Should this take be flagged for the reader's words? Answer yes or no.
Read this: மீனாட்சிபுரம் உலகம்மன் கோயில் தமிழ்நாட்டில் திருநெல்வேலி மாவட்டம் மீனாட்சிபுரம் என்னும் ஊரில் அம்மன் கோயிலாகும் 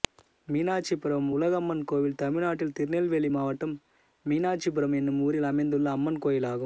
yes